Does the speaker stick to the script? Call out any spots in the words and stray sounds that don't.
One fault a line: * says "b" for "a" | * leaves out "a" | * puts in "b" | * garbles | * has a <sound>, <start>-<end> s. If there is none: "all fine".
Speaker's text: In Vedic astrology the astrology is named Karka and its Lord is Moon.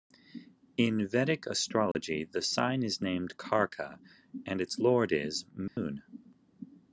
* has a dropout, 1.9-1.9 s
* says "sign" for "astrology"
* has a dropout, 5.7-5.8 s